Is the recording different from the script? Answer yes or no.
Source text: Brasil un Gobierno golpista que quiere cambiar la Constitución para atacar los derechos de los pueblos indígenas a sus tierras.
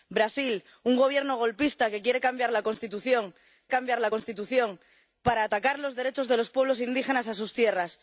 yes